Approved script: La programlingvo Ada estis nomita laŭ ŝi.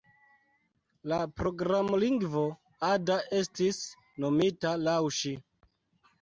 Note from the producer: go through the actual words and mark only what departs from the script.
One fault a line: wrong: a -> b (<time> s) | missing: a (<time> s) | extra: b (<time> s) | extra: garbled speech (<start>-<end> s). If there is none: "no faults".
no faults